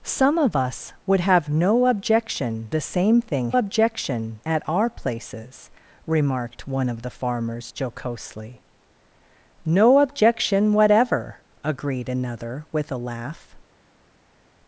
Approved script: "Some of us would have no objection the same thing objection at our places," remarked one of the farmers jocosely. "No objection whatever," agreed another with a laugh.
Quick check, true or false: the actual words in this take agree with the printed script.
true